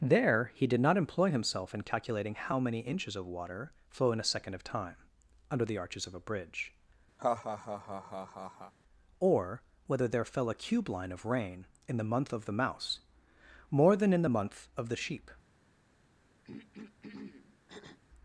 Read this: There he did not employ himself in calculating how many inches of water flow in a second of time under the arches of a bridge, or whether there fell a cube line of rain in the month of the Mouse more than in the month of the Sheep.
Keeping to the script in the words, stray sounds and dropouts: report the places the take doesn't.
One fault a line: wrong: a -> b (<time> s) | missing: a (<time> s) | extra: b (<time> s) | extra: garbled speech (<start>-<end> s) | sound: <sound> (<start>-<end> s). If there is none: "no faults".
sound: laugh (7.2-8.7 s)
sound: throat clearing (16.4-18.0 s)